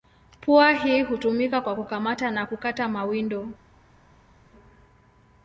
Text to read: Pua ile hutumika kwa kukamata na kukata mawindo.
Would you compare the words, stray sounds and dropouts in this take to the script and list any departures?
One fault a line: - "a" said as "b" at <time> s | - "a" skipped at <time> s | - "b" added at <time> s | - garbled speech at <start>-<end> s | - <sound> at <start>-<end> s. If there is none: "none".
- "ile" said as "hii" at 0.7 s